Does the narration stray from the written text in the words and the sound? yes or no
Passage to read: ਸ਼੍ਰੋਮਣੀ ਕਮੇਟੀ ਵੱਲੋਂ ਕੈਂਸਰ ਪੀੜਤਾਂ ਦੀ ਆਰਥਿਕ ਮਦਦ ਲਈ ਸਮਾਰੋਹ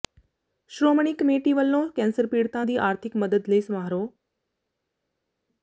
no